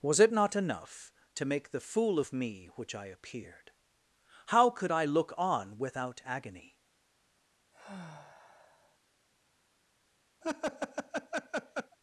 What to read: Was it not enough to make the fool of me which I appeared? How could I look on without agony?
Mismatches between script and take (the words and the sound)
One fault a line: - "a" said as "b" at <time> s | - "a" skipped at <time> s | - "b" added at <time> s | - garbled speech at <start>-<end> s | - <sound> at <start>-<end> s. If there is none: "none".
- sigh at 7.7-9.0 s
- laugh at 10.4-12.0 s